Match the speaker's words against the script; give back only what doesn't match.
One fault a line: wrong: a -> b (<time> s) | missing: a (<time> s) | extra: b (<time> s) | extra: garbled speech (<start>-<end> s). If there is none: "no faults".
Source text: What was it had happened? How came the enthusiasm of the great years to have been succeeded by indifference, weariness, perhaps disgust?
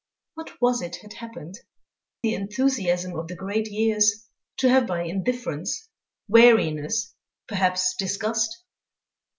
missing: How came (1.6 s)
missing: been succeeded (4.8 s)